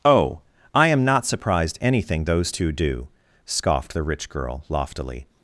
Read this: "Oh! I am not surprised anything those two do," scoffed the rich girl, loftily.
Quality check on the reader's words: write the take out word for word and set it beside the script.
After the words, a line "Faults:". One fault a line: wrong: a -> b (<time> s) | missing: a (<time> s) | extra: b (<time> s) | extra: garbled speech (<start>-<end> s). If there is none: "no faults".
"Oh! I am not surprised anything those two do," scoffed the rich girl, loftily.
Faults:
no faults